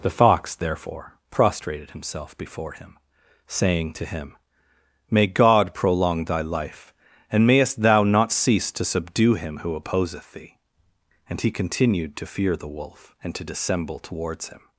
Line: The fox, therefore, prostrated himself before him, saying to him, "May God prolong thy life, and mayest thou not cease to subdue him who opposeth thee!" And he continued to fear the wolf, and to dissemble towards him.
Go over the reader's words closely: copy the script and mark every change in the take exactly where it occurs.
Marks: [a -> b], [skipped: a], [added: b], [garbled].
The fox, therefore, prostrated himself before him, saying to him, "May God prolong thy life, and mayest thou not cease to subdue him who opposeth thee!" And he continued to fear the wolf, and to dissemble towards him.